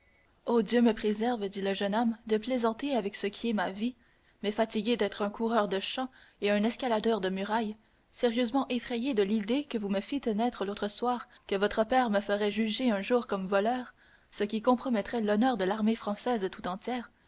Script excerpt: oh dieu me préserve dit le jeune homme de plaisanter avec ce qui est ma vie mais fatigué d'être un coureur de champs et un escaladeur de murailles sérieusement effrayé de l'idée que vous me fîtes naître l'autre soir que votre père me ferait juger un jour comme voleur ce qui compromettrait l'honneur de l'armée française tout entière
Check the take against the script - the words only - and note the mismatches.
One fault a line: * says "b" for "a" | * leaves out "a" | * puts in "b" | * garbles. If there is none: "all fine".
all fine